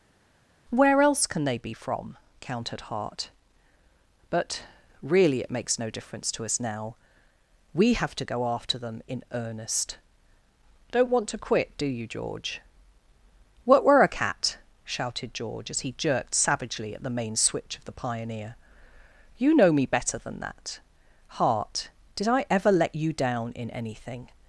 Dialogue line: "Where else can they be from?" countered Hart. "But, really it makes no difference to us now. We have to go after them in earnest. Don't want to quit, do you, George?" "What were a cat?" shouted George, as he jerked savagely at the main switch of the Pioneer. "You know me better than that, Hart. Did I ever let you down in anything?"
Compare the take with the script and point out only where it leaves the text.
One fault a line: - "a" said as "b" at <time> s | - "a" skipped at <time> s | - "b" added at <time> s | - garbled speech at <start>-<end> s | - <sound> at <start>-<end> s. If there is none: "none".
none